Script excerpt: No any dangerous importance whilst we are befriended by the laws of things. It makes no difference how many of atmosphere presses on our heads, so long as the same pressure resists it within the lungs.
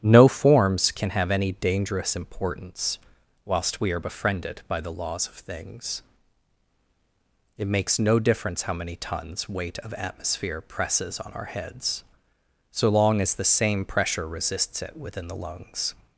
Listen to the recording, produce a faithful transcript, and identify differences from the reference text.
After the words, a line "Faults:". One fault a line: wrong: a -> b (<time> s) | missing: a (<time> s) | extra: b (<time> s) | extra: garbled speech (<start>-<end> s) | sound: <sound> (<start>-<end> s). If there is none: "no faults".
No forms can have any dangerous importance whilst we are befriended by the laws of things. It makes no difference how many tons weight of atmosphere presses on our heads, so long as the same pressure resists it within the lungs.
Faults:
extra: forms can have (0.3 s)
extra: tons weight (8.9 s)